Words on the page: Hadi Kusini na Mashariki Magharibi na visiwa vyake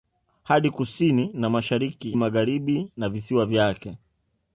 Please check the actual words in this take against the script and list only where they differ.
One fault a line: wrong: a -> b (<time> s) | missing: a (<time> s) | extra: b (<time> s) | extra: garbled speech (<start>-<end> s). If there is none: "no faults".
no faults